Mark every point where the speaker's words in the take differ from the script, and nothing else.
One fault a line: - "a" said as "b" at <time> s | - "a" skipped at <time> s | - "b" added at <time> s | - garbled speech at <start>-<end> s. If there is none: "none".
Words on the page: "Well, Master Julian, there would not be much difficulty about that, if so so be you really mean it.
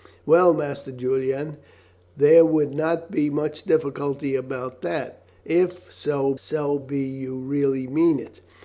none